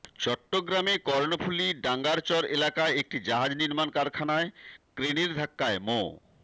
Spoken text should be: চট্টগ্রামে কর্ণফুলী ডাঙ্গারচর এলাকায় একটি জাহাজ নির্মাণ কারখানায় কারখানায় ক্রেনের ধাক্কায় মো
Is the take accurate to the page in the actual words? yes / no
no